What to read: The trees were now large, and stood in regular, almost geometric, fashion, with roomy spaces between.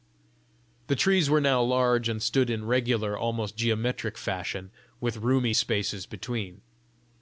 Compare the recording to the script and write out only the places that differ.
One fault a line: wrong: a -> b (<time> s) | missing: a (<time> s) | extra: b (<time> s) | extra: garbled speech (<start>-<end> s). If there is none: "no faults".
no faults